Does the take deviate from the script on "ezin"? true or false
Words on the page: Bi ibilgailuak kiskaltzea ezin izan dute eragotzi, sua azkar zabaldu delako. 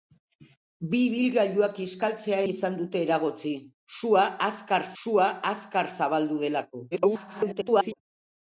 true